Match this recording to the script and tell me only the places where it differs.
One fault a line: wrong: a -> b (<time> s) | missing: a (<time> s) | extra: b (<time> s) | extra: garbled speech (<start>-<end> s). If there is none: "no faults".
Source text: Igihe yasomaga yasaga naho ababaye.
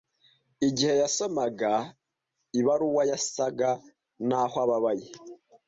extra: ibaruwa (2.6 s)